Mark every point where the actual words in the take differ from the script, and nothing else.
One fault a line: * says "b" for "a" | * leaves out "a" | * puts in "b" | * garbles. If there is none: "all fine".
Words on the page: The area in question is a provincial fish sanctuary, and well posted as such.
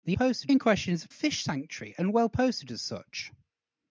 * says "posted" for "area"
* leaves out "provincial"